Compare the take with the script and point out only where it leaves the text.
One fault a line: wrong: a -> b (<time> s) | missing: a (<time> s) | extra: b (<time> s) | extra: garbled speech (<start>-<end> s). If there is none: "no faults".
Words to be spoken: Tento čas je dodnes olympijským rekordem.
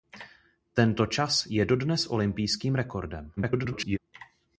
extra: garbled speech (3.4-4.0 s)